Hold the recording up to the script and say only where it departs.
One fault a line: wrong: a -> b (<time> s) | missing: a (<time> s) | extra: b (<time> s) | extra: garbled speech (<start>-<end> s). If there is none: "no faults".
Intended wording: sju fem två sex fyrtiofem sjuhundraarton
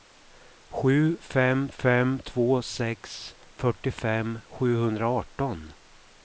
extra: fem (1.7 s)